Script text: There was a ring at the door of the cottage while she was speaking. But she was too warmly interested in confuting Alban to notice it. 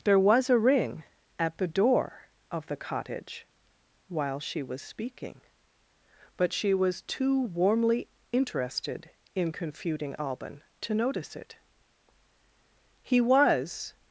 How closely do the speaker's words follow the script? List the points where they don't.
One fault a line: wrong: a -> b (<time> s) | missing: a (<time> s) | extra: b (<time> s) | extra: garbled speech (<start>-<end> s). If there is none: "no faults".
extra: He was (13.0 s)